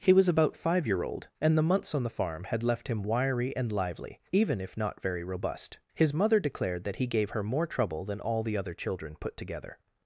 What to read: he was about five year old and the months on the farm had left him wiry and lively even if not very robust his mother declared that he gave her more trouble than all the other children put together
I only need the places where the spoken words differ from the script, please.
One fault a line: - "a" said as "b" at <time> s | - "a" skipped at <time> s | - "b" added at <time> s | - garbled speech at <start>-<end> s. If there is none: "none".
none